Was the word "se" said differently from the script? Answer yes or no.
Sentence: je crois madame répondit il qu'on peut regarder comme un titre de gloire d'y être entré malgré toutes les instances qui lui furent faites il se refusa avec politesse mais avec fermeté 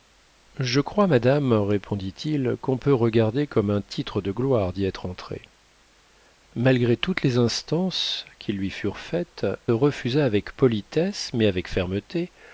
yes